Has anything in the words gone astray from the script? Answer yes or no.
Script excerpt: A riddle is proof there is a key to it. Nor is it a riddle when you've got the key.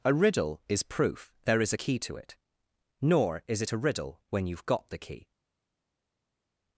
no